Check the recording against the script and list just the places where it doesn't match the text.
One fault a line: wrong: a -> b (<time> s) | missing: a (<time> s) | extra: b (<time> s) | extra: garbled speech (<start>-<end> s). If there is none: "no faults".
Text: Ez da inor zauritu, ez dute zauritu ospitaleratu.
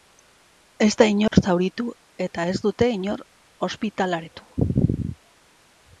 extra: eta (2.3 s)
wrong: zauritu -> inor (3.0 s)